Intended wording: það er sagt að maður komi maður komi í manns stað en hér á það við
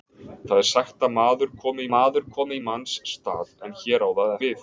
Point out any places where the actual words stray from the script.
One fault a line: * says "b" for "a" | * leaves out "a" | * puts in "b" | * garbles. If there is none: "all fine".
all fine